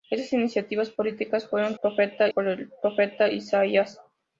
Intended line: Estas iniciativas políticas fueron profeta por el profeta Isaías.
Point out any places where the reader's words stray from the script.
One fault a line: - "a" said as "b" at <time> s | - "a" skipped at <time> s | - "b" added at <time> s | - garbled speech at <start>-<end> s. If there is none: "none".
none